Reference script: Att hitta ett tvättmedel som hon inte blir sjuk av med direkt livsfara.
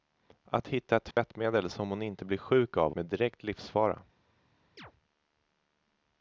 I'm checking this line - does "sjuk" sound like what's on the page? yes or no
yes